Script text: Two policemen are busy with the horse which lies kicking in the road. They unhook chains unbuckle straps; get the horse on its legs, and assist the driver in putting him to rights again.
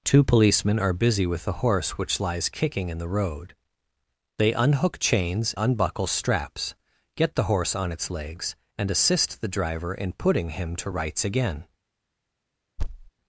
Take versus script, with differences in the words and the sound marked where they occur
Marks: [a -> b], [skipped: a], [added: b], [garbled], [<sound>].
Two policemen are busy with the horse which lies kicking in the road. They unhook chains unbuckle straps; get the horse on its legs, and assist the driver in putting him to rights again. [thud]